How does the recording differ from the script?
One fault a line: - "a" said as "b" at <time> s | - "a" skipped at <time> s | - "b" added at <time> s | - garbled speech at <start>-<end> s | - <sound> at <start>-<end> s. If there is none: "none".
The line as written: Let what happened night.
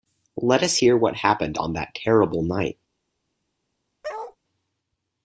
- "us hear" added at 0.6 s
- "on that terrible" added at 1.6 s
- bark at 4.0-4.4 s